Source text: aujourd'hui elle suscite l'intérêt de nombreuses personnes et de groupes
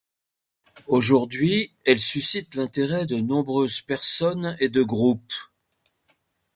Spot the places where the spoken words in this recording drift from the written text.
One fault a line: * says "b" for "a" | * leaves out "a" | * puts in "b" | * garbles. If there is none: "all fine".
all fine